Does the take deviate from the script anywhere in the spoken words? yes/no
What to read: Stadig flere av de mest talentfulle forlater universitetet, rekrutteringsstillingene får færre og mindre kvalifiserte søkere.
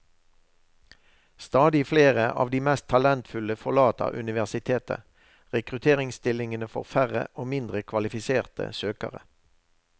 no